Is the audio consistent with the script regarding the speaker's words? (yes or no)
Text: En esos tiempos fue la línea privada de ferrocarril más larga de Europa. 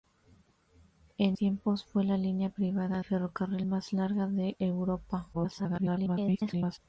no